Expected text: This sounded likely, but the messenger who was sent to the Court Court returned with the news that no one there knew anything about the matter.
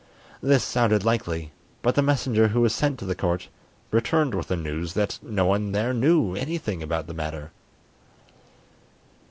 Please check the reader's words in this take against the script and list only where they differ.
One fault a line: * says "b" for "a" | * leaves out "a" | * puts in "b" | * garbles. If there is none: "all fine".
* leaves out "Court"